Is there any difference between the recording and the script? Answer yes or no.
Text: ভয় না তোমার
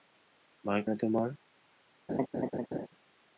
no